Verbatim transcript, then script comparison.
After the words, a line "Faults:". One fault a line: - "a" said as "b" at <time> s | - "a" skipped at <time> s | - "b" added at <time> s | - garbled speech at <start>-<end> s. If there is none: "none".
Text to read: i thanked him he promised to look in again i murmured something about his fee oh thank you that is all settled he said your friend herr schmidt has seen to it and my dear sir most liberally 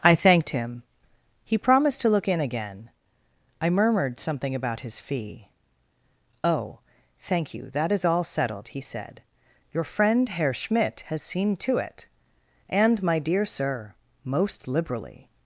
i thanked him he promised to look in again i murmured something about his fee oh thank you that is all settled he said your friend herr schmidt has seen to it and my dear sir most liberally
Faults:
none